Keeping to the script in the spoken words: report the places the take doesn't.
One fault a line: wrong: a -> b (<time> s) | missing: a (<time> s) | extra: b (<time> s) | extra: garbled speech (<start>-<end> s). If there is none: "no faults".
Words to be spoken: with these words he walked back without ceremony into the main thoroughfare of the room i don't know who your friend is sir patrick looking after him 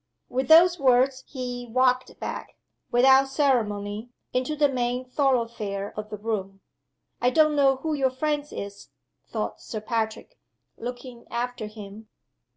wrong: these -> those (0.5 s)
extra: thought (9.3 s)